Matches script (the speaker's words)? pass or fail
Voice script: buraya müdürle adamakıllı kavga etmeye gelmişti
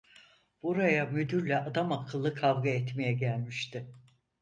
pass